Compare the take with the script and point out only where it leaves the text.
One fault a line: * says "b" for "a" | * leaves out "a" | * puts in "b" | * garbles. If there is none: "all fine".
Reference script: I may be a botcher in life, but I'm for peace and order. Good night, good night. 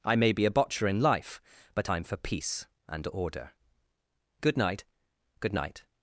all fine